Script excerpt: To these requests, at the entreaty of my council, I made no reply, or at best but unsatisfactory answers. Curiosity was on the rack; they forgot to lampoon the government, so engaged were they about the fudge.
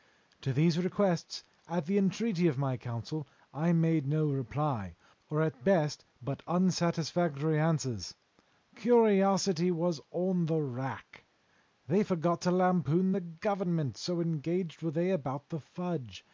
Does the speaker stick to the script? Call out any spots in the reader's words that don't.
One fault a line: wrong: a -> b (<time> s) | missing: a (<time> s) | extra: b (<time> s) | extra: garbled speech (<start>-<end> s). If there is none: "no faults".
no faults